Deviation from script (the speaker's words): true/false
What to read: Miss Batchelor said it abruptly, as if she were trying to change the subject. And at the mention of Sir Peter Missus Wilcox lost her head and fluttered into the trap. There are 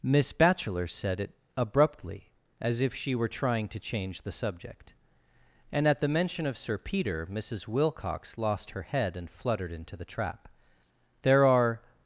false